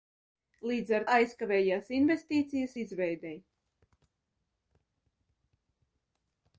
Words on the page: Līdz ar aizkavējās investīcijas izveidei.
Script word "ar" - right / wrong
right